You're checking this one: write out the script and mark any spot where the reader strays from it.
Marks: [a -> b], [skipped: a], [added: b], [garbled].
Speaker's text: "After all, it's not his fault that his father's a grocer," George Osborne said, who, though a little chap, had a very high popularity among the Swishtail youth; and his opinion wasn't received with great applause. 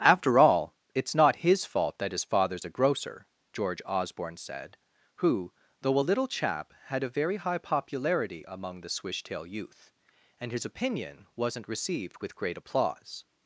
"After all, it's not his fault that his father's a grocer," George Osborne said, who, though a little chap, had a very high popularity among the Swishtail youth; and his opinion wasn't received with great applause.